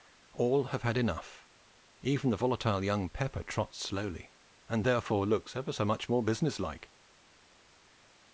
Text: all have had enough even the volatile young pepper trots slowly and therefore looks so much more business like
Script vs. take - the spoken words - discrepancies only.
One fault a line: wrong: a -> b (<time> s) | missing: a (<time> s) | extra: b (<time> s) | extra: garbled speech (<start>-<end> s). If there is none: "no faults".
extra: ever (5.6 s)